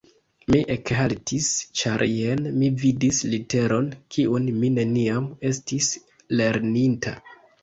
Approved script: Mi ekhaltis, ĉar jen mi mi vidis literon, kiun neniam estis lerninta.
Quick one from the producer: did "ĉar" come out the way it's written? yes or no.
yes